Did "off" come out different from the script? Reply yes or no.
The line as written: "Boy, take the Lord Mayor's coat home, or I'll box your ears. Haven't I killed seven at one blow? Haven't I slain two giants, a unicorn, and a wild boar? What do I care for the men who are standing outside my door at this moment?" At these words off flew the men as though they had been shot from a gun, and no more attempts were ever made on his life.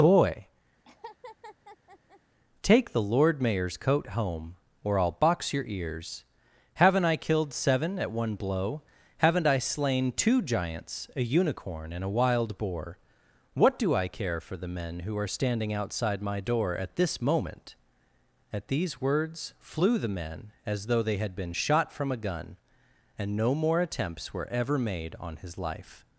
yes